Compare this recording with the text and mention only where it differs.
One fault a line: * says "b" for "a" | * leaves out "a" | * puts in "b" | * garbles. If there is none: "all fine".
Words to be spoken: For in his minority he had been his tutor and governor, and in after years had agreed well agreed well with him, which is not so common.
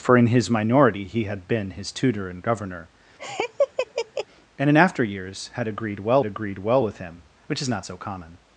all fine